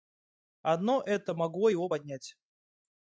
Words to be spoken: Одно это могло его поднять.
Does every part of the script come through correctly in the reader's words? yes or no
yes